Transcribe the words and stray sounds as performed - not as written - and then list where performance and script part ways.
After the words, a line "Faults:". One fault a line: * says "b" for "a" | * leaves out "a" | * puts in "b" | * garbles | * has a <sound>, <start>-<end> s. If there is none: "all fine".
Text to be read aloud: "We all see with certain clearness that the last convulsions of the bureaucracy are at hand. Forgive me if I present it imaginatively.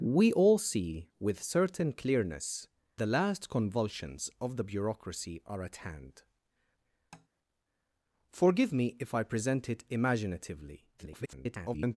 "We all see with certain clearness the last convulsions of the bureaucracy are at hand. Forgive me if I present it imaginatively. [garbled]
Faults:
* leaves out "that"
* has a tap, 7.1-7.3 s
* garbles